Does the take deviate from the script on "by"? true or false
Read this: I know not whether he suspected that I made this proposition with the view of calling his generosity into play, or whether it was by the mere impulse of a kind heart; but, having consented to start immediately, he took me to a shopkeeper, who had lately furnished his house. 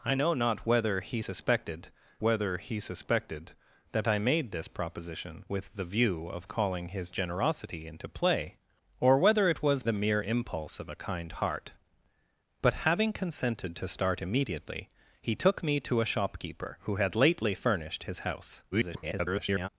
true